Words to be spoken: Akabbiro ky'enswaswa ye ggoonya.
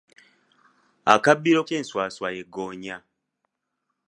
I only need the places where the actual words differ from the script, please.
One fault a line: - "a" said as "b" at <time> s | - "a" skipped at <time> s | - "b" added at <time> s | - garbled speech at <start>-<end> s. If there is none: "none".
none